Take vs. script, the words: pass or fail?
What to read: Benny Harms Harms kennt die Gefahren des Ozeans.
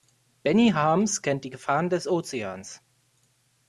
fail